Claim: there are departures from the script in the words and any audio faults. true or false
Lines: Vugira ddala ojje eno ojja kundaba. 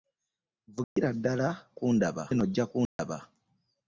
true